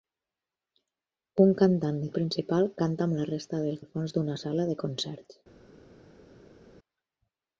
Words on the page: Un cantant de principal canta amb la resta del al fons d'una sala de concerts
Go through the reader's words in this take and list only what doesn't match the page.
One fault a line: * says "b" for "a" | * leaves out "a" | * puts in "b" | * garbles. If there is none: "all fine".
all fine